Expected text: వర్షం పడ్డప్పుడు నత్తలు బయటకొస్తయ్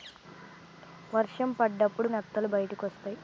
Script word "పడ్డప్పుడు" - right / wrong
right